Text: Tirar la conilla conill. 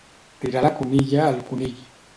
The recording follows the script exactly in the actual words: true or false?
false